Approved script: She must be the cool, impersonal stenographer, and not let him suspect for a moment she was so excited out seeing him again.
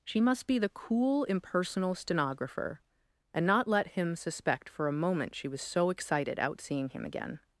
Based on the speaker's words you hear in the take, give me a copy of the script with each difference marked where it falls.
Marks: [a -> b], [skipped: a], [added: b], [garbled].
She must be the cool, impersonal stenographer, and not let him suspect for a moment she was so excited out seeing him again.